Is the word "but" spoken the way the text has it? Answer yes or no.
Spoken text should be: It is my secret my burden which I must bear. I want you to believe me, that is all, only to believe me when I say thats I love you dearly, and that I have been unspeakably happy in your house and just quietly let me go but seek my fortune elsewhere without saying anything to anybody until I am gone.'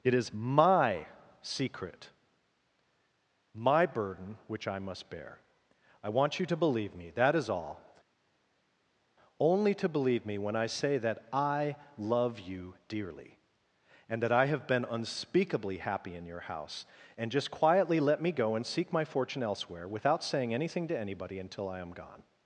no